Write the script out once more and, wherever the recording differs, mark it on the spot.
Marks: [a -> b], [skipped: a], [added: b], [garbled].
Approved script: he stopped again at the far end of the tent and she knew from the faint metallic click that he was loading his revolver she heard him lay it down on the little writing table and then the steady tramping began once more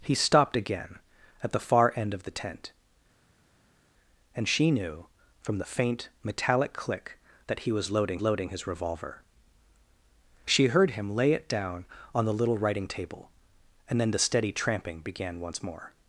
he stopped again at the far end of the tent and she knew from the faint metallic click that he was loading [added: loading] his revolver she heard him lay it down on the little writing table and then the steady tramping began once more